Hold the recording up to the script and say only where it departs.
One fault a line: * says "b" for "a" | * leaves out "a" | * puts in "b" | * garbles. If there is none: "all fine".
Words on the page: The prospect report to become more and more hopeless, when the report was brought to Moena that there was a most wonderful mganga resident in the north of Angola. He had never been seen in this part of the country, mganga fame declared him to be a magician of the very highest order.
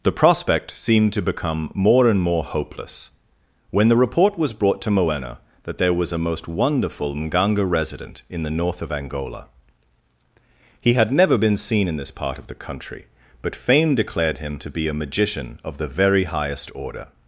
* says "seemed" for "report"
* says "but" for "mganga"